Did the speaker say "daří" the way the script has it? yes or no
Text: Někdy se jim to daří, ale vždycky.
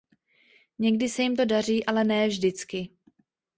yes